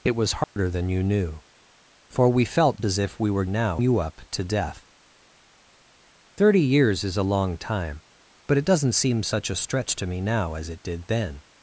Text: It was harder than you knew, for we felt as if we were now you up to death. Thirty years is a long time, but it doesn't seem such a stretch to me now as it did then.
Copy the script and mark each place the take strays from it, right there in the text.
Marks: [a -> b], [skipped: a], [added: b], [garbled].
It was harder than you knew, for we felt as if we were now you up to death. Thirty years is a long time, but it doesn't seem such a stretch to me now as it did then.